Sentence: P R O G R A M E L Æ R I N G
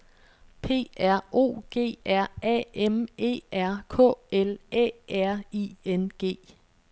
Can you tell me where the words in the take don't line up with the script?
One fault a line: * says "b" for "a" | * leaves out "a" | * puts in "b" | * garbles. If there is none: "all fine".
* puts in "R K"